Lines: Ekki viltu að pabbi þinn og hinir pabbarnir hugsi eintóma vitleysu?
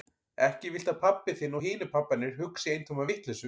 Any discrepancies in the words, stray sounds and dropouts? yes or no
no